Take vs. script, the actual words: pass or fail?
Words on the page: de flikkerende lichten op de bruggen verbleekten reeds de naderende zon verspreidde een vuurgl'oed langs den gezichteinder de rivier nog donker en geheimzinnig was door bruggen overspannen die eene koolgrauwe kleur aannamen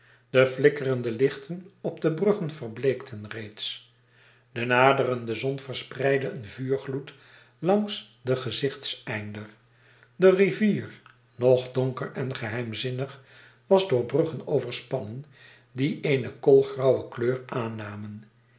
pass